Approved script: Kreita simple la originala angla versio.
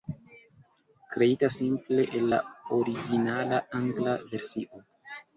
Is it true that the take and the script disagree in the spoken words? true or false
true